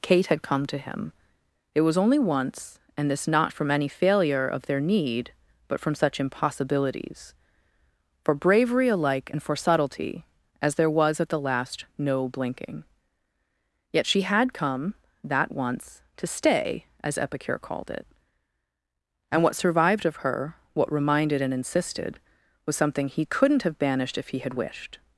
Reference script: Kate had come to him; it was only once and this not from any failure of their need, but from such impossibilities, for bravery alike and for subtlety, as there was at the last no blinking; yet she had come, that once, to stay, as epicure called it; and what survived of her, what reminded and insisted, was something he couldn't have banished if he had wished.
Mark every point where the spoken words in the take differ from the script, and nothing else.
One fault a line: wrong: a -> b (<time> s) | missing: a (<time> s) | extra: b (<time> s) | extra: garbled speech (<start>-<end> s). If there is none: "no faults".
no faults